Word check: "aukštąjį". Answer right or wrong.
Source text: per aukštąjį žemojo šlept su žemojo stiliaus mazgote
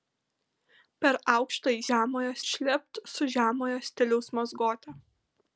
right